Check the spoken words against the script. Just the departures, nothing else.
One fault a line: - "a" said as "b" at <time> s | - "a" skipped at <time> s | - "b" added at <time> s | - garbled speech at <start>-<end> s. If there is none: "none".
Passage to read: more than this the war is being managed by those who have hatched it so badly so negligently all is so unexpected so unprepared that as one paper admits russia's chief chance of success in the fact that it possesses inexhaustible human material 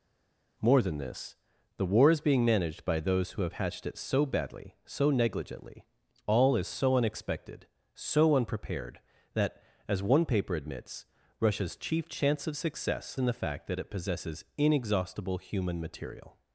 none